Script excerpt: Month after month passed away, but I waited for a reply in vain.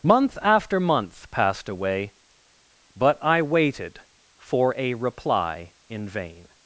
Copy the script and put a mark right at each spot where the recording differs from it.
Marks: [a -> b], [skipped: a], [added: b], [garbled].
Month after month passed away, but I waited for a reply in vain.